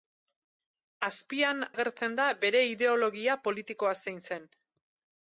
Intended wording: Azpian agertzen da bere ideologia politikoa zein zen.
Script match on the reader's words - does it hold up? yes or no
yes